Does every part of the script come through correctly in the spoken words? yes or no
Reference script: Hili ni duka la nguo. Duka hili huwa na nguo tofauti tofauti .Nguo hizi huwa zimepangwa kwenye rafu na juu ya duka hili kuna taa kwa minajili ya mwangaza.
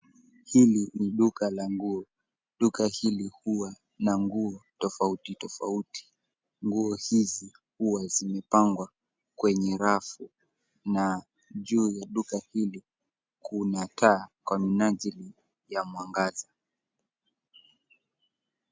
yes